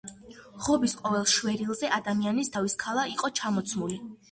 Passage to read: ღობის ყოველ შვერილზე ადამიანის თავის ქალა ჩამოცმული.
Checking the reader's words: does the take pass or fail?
fail